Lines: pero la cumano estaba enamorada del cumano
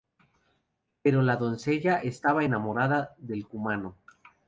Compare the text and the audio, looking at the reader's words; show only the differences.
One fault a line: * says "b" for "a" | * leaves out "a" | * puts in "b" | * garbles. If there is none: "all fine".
* says "doncella" for "cumano"